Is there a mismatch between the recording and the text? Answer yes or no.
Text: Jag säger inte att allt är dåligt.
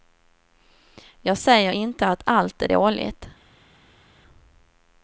no